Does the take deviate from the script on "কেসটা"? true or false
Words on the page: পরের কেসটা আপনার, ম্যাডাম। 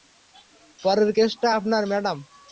false